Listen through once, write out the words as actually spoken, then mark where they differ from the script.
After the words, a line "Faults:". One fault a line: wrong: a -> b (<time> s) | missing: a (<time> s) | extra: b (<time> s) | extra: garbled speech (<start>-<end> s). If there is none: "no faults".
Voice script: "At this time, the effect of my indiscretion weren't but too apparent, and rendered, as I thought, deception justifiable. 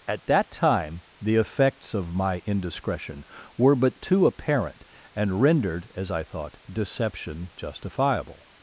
"At that time, the effects of my indiscretion were but too apparent, and rendered, as I thought, deception justifiable.
Faults:
wrong: this -> that (0.2 s)
wrong: effect -> effects (1.4 s)
wrong: weren't -> were (3.5 s)